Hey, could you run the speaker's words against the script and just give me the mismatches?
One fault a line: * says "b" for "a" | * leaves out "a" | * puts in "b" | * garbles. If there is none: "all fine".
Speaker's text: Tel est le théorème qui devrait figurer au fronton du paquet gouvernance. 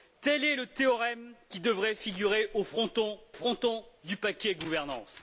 * puts in "fronton"